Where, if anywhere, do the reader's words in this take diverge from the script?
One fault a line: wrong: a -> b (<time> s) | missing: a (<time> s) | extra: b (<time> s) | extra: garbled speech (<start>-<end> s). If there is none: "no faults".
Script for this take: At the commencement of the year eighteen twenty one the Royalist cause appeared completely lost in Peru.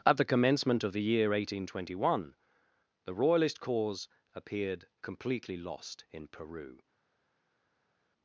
no faults